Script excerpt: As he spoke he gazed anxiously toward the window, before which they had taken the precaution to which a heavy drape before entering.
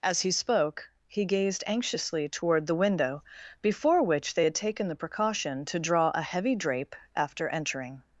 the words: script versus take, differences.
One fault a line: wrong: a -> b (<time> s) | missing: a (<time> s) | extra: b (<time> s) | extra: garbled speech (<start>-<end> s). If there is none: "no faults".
wrong: which -> draw (5.8 s)
wrong: before -> after (7.1 s)